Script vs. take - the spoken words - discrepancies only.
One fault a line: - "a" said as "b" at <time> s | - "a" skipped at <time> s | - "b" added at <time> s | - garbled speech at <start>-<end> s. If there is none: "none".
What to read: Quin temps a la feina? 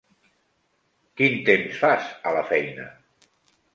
- "fas" added at 1.9 s